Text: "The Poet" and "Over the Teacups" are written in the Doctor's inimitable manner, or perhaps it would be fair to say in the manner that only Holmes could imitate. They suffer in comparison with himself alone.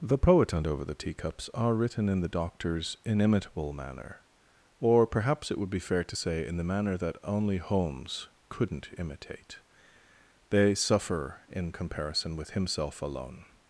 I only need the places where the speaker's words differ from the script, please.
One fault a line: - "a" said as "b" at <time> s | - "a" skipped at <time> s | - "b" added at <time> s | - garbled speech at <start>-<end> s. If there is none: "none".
- "could" said as "couldn't" at 8.5 s